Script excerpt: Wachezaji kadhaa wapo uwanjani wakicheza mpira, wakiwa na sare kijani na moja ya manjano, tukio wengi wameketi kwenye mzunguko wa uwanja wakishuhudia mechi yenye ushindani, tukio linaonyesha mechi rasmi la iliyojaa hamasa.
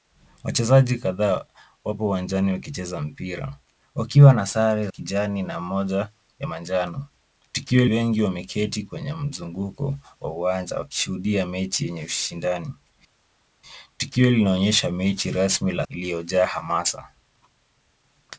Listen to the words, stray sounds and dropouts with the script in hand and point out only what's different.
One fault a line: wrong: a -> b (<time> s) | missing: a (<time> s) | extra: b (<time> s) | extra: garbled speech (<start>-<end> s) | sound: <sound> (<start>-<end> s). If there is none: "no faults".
no faults